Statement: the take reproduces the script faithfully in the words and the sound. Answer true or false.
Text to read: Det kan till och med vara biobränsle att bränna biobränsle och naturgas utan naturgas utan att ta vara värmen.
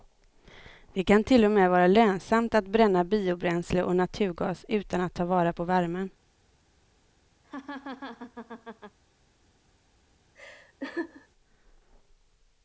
false